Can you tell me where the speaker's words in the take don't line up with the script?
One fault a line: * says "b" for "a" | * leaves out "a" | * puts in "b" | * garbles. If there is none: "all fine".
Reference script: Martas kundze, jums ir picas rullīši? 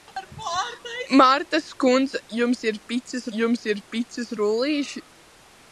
* puts in "jums ir picas"